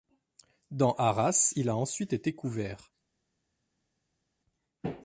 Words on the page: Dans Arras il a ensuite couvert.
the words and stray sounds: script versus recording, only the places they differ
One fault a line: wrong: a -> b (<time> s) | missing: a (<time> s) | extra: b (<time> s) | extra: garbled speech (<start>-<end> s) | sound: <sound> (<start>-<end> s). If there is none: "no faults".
extra: été (2.1 s)